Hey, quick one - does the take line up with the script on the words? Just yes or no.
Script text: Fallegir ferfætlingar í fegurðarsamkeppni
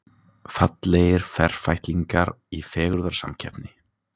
yes